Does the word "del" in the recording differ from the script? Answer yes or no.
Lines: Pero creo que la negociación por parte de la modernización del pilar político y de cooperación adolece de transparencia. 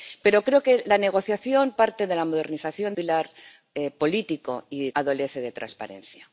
yes